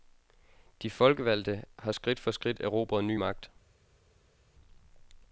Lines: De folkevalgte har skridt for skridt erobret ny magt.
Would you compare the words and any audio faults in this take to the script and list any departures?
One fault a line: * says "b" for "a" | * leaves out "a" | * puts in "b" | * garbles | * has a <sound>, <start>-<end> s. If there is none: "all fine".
all fine